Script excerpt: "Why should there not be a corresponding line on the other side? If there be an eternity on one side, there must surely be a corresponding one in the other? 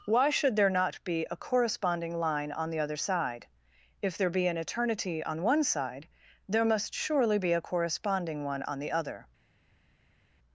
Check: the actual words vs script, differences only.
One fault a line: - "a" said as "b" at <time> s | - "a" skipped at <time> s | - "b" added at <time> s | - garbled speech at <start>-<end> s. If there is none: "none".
- "in" said as "on" at 8.6 s